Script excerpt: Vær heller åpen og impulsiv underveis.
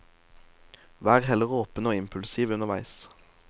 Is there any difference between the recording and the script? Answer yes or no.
no